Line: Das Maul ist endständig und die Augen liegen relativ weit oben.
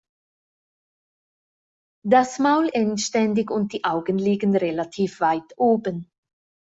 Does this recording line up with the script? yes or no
no